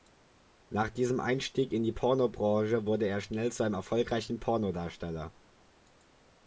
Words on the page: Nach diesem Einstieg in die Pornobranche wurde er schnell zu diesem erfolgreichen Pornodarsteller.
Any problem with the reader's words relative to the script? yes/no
yes